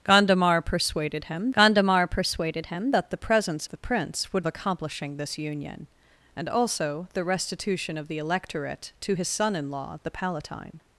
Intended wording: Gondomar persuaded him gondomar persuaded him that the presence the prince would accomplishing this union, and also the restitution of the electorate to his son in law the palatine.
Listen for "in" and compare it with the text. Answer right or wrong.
right